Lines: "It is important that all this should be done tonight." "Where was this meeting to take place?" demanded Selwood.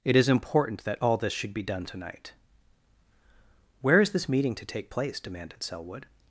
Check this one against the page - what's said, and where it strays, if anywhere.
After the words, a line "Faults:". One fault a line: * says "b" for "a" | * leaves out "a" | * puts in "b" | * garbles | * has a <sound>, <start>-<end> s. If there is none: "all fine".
"It is important that all this should be done tonight." "Where is this meeting to take place?" demanded Selwood.
Faults:
* says "is" for "was"